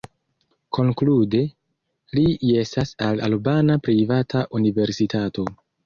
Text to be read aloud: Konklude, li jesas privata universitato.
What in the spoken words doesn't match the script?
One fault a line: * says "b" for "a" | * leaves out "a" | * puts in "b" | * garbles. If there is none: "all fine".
* puts in "al albana"